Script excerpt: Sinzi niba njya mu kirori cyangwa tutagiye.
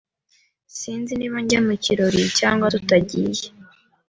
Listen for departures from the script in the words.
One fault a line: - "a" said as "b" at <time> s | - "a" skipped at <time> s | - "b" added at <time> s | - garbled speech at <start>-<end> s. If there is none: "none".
none